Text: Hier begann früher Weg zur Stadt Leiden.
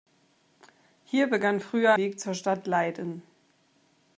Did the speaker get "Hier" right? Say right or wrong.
right